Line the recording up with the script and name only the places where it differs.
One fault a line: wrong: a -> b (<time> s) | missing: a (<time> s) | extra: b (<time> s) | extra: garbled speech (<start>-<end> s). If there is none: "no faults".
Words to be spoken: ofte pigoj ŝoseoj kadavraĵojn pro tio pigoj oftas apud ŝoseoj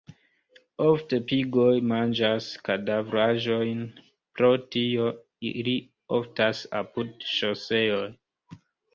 wrong: ŝoseoj -> manĝas (1.9 s)
wrong: pigoj -> ili (5.5 s)